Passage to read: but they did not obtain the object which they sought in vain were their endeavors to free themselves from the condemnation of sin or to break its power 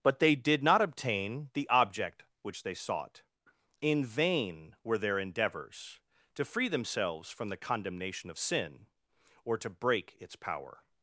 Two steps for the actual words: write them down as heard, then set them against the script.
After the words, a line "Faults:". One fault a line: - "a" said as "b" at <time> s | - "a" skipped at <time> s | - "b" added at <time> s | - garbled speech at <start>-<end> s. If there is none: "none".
but they did not obtain the object which they sought in vain were their endeavors to free themselves from the condemnation of sin or to break its power
Faults:
none